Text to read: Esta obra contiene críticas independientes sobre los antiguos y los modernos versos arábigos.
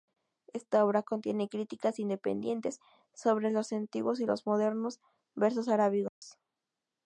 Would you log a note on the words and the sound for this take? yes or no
yes